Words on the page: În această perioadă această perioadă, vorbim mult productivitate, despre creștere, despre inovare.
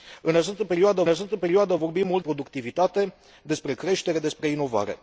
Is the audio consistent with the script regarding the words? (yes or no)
yes